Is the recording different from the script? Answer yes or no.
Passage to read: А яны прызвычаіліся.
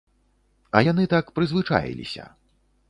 yes